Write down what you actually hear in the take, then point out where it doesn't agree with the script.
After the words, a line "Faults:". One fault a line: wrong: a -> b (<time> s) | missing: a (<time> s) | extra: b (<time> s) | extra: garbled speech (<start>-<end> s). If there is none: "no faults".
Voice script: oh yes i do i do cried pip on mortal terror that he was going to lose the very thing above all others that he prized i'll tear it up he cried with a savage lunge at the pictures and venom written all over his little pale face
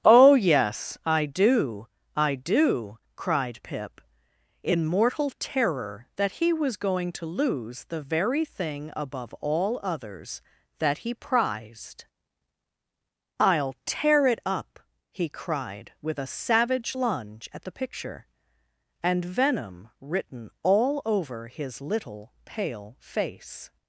oh yes i do i do cried pip in mortal terror that he was going to lose the very thing above all others that he prized i'll tear it up he cried with a savage lunge at the picture and venom written all over his little pale face
Faults:
wrong: on -> in (4.6 s)
wrong: pictures -> picture (17.7 s)